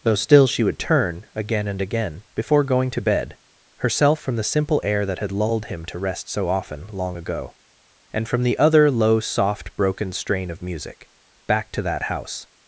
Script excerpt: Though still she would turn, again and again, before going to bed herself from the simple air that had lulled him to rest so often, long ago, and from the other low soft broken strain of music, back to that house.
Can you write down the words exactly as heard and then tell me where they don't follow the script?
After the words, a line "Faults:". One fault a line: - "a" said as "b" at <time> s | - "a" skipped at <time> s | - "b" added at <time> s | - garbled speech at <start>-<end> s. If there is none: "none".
Though still she would turn, again and again, before going to bed herself from the simple air that had lulled him to rest so often, long ago, and from the other low soft broken strain of music, back to that house.
Faults:
none